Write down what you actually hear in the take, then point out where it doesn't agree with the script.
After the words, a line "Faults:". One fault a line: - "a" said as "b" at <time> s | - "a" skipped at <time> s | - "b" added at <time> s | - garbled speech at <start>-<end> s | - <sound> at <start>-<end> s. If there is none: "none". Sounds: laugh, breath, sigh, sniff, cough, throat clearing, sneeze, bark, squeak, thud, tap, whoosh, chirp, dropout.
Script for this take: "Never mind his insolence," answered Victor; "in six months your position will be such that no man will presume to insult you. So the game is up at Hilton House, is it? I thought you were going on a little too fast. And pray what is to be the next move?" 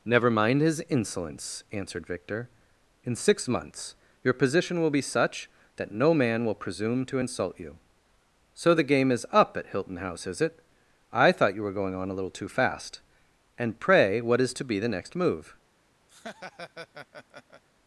"Never mind his insolence," answered Victor; "in six months your position will be such that no man will presume to insult you. So the game is up at Hilton House, is it? I thought you were going on a little too fast. And pray what is to be the next move?"
Faults:
- laugh at 16.1-17.6 s